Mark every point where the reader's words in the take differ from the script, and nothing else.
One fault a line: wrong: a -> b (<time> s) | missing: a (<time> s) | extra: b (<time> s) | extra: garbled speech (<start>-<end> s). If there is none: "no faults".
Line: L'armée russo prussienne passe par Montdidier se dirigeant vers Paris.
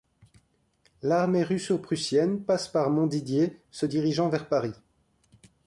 no faults